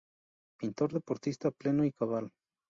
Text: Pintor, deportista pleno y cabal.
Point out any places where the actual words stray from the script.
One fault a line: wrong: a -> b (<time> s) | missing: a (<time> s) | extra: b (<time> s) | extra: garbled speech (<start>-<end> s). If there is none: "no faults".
no faults